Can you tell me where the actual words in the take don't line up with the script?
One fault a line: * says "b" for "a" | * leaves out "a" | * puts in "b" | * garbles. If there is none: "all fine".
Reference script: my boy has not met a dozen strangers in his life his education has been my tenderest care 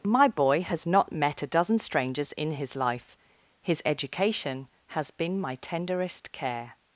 all fine